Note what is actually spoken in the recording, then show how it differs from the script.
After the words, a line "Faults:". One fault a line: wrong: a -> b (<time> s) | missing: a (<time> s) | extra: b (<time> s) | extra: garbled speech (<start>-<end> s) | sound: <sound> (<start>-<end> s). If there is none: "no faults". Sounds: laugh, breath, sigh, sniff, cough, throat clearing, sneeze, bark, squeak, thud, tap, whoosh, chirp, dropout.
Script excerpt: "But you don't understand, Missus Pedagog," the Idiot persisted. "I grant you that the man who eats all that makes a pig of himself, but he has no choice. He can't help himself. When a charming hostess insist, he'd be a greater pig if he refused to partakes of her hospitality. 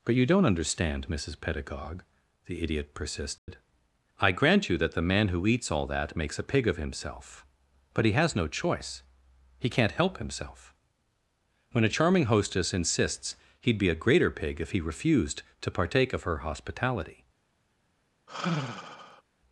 "But you don't understand, Missus Pedagog," the Idiot persisted. "I grant you that the man who eats all that makes a pig of himself, but he has no choice. He can't help himself. When a charming hostess insists, he'd be a greater pig if he refused to partake of her hospitality.
Faults:
sound: dropout (3.4-3.5 s)
wrong: insist -> insists (12.7 s)
wrong: partakes -> partake (15.7 s)
sound: sigh (18.3-19.2 s)